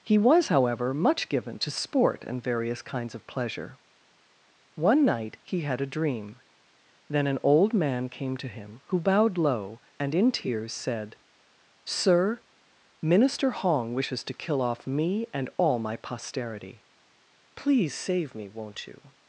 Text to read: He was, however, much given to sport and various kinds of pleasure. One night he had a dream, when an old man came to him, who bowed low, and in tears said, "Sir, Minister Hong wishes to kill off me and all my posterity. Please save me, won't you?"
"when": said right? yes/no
no